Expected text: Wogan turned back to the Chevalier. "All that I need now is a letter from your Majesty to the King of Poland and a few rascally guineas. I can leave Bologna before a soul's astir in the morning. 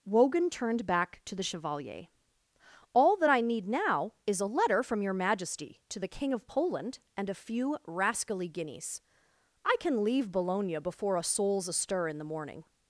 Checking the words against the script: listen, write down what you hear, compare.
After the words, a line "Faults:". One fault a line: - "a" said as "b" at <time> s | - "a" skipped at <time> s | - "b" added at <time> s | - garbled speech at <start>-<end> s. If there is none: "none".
Wogan turned back to the Chevalier. "All that I need now is a letter from your Majesty to the King of Poland and a few rascally guineas. I can leave Bologna before a soul's astir in the morning.
Faults:
none